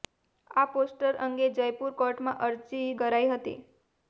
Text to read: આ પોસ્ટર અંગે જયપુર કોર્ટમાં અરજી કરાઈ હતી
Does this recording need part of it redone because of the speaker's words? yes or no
no